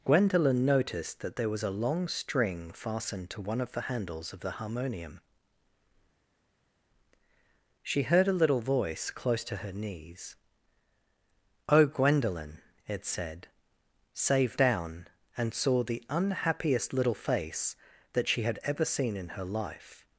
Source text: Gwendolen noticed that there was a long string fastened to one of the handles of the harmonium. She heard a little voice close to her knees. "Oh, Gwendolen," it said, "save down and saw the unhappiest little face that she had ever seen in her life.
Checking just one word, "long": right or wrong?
right